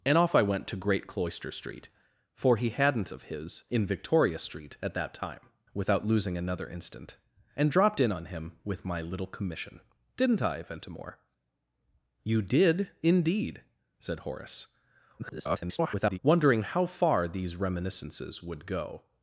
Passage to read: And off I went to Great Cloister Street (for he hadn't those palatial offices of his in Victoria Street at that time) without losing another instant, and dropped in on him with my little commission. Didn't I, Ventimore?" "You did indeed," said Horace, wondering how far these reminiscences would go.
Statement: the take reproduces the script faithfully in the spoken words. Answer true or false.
false